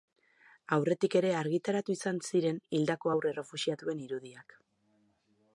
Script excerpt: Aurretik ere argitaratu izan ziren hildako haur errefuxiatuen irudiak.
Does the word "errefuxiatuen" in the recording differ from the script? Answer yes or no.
no